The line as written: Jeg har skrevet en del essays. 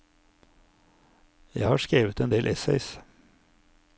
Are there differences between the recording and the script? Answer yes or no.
no